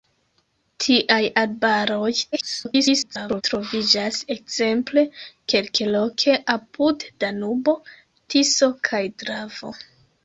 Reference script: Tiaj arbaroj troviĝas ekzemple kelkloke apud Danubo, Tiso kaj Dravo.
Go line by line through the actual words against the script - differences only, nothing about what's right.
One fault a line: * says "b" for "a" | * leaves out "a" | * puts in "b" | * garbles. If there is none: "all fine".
* garbles